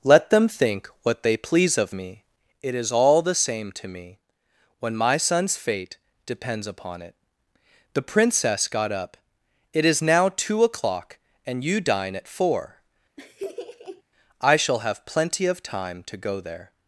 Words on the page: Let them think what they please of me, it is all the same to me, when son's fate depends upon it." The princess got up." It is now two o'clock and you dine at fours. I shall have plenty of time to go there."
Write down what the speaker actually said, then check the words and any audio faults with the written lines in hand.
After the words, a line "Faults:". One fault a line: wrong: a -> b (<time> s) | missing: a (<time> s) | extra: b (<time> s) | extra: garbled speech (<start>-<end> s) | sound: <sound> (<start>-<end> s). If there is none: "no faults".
Let them think what they please of me, it is all the same to me, when my son's fate depends upon it." The princess got up." It is now two o'clock and you dine at four. I shall have plenty of time to go there."
Faults:
extra: my (4.9 s)
wrong: fours -> four (12.3 s)
sound: laugh (13.2-14.0 s)